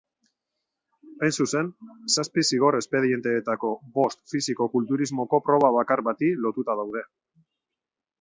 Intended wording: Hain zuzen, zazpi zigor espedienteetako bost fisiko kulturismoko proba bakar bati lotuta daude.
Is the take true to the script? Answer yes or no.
yes